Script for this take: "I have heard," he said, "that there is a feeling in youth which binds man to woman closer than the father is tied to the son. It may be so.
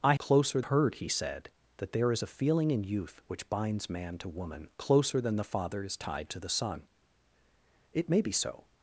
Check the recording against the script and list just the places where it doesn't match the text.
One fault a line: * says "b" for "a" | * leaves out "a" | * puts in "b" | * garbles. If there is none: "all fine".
* says "closer" for "have"